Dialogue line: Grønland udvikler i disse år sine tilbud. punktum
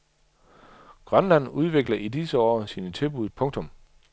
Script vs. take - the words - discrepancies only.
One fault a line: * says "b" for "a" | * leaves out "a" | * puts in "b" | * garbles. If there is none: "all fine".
all fine